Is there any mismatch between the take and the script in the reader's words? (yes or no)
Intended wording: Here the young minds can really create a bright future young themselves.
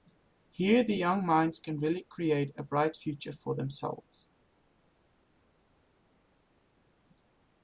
yes